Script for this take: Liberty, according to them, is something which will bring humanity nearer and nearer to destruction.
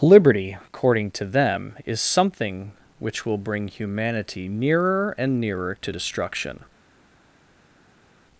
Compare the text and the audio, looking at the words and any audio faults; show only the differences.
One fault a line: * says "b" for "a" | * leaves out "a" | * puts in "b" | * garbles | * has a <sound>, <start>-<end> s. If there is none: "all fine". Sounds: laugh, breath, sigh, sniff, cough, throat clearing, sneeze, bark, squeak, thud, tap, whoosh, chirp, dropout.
all fine